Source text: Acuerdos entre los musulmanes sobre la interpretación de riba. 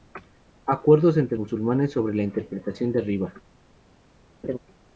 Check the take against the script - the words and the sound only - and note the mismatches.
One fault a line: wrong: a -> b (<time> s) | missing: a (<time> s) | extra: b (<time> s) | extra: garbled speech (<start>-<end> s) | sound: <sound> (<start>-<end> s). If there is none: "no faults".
missing: los (1.4 s)
sound: laugh (4.4-4.6 s)